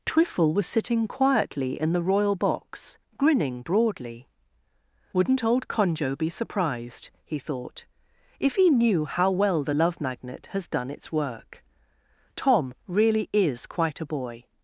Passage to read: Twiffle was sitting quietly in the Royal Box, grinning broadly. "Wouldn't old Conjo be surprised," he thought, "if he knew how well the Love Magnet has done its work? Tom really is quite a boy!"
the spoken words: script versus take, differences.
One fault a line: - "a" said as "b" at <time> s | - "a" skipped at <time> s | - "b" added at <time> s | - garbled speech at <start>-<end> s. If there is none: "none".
none